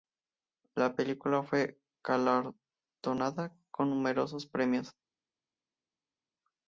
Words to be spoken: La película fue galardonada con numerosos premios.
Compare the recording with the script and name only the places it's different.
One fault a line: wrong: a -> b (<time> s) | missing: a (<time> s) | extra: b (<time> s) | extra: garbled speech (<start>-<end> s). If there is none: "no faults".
no faults